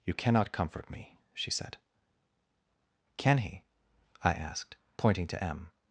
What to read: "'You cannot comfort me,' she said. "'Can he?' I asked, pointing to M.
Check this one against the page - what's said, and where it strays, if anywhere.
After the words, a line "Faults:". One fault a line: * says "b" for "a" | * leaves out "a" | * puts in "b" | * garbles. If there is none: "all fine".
"'You cannot comfort me,' she said. "'Can he?' I asked, pointing to M.
Faults:
all fine